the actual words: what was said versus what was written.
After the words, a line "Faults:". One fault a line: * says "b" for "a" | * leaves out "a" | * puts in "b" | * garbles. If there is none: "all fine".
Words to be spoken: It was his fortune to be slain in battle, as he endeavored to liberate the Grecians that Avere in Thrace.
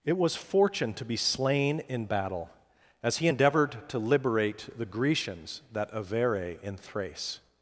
It was fortune to be slain in battle, as he endeavored to liberate the Grecians that Avere in Thrace.
Faults:
* leaves out "his"